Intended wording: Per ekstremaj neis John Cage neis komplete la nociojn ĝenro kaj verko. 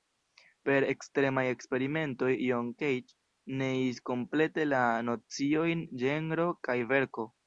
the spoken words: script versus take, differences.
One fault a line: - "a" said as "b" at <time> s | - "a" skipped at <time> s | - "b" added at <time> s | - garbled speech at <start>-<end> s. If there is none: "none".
- "neis" said as "eksperimentoj" at 1.5 s